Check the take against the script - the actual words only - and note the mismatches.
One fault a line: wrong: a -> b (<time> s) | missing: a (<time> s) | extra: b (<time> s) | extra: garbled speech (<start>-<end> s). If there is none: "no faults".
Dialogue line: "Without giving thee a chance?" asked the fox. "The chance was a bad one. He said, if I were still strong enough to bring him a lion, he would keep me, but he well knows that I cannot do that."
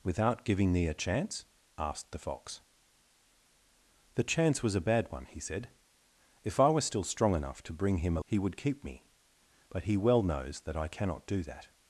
missing: lion (8.2 s)